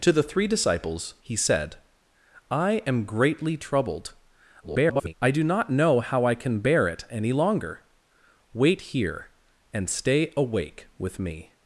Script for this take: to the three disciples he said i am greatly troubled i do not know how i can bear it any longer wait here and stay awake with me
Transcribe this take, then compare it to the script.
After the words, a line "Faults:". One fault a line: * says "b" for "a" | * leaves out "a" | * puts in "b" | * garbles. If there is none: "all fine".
to the three disciples he said i am greatly troubled [garbled] i do not know how i can bear it any longer wait here and stay awake with me
Faults:
* garbles